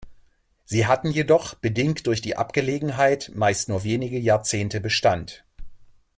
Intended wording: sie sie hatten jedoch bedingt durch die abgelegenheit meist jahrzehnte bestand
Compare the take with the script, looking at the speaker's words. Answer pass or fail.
fail